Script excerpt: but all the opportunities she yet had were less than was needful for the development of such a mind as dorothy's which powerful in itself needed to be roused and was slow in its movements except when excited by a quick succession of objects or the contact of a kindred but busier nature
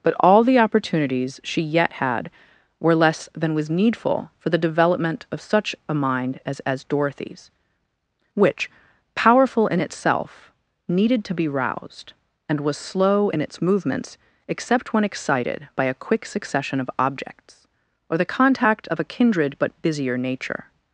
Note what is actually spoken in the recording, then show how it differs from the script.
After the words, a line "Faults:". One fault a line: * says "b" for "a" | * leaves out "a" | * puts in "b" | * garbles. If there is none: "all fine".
but all the opportunities she yet had were less than was needful for the development of such a mind as as dorothy's which powerful in itself needed to be roused and was slow in its movements except when excited by a quick succession of objects or the contact of a kindred but busier nature
Faults:
* puts in "as"